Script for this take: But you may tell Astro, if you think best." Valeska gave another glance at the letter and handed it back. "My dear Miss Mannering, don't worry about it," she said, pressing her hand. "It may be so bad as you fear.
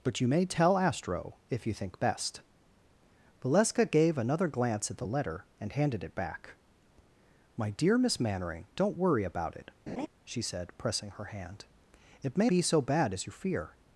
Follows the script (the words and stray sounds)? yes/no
no